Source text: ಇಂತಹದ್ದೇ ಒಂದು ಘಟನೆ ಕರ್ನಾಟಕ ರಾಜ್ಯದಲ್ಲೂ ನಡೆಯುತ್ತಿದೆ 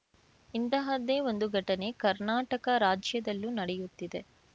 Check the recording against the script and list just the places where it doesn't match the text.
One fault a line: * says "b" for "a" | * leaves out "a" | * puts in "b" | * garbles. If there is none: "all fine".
all fine